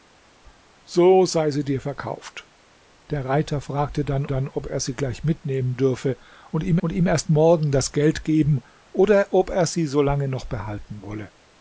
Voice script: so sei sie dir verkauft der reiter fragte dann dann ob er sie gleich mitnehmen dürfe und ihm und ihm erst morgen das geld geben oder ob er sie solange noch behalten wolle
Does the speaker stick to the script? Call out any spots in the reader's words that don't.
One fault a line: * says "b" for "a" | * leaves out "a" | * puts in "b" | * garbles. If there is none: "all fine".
all fine